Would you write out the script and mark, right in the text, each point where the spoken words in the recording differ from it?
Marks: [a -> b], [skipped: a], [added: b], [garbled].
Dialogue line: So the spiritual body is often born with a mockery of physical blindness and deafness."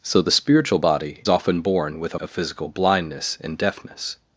So the spiritual body [skipped: is] often born with a [skipped: mockery] of physical blindness and deafness."